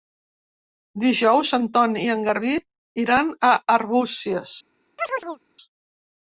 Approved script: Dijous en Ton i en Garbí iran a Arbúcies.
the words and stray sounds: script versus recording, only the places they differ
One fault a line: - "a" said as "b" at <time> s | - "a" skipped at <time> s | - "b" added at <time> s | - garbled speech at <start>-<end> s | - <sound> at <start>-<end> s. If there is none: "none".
- chirp at 5.0-5.4 s